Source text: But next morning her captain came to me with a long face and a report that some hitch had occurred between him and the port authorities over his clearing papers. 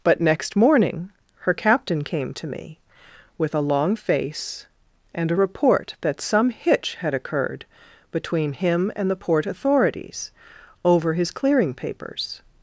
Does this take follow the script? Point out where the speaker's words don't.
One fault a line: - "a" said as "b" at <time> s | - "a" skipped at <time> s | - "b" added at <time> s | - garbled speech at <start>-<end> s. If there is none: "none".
none